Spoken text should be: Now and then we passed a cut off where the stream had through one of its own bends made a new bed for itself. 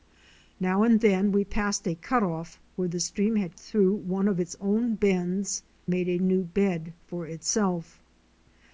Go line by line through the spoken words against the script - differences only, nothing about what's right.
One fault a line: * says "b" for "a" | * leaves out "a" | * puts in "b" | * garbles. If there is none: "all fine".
all fine